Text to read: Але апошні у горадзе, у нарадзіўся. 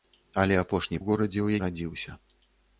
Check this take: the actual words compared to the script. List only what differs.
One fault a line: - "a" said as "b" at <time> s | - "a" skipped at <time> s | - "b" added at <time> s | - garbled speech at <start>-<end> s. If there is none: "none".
none